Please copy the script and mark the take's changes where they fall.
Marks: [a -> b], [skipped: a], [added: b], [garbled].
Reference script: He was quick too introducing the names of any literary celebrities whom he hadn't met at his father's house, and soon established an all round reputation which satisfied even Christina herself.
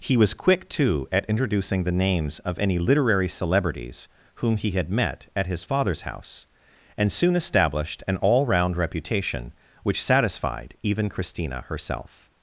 He was quick too [added: at] introducing the names of any literary celebrities whom he [hadn't -> had] met at his father's house, and soon established an all round reputation which satisfied even Christina herself.